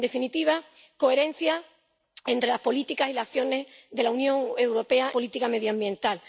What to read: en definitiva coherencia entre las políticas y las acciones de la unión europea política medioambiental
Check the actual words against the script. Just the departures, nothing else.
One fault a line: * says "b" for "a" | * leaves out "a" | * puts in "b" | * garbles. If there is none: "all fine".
all fine